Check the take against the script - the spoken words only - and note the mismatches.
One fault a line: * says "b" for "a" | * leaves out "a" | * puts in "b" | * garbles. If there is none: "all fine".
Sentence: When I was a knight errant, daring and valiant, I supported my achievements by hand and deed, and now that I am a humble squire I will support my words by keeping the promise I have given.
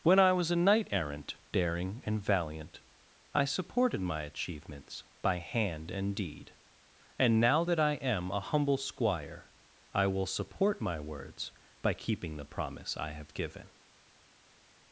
all fine